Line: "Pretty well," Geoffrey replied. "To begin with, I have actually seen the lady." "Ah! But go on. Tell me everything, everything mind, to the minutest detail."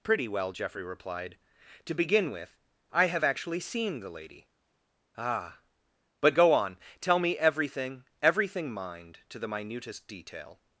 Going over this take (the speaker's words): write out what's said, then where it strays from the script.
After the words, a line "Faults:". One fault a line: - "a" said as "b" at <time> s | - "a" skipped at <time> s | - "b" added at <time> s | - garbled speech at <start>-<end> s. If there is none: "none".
"Pretty well," Geoffrey replied. "To begin with, I have actually seen the lady." "Ah! But go on. Tell me everything, everything mind, to the minutest detail."
Faults:
none